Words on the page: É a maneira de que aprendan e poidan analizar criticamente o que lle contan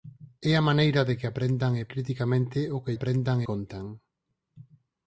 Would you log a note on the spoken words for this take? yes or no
yes